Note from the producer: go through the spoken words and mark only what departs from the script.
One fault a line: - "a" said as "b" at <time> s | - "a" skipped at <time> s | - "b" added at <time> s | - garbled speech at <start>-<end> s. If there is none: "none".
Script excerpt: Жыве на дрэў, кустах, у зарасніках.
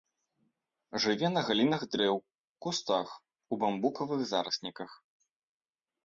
- "галінах" added at 1.5 s
- "бамбукавых" added at 3.6 s